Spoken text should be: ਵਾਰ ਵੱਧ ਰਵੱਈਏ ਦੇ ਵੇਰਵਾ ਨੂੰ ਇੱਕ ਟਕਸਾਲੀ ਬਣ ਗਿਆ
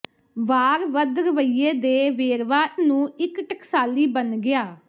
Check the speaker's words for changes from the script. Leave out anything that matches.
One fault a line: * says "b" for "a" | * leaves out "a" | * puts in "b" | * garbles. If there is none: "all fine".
all fine